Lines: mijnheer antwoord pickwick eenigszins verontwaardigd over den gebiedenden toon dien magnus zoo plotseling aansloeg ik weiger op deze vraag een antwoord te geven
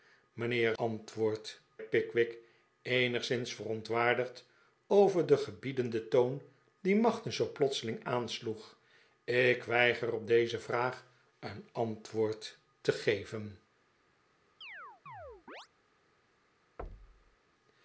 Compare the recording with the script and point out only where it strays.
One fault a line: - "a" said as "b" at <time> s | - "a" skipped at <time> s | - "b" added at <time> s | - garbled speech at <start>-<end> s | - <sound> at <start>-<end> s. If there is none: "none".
- chirp at 14.6-15.7 s
- thud at 16.8-17.4 s